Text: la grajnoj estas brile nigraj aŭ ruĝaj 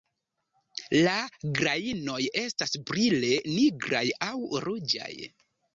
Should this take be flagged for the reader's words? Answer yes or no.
no